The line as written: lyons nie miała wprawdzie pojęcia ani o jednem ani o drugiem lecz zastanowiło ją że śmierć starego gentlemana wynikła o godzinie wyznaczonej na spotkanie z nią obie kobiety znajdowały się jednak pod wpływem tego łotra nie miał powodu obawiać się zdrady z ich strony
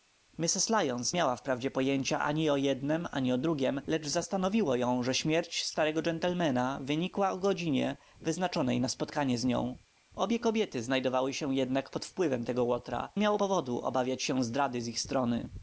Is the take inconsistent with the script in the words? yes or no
yes